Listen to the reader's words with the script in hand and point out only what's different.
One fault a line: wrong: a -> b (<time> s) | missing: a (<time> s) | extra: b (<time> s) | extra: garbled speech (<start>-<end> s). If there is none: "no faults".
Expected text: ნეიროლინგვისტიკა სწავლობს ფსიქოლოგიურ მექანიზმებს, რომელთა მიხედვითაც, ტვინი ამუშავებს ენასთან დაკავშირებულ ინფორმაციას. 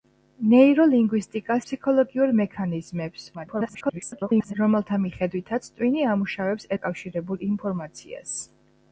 missing: სწავლობს (1.6 s)
extra: garbled speech (3.3-4.5 s)
missing: ენასთან (6.7 s)